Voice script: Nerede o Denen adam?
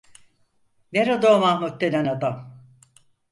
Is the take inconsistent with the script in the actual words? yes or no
yes